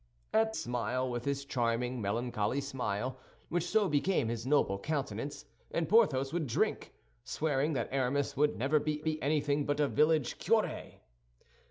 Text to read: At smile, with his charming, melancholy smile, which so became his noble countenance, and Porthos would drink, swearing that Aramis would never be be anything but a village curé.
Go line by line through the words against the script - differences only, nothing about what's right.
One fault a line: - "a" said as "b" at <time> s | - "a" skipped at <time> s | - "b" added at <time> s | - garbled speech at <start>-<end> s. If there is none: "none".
none